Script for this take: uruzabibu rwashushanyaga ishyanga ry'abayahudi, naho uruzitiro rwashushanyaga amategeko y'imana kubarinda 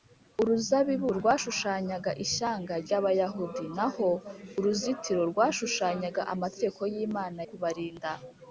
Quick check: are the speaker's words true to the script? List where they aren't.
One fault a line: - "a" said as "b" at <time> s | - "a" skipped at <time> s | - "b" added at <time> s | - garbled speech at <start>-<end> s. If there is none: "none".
none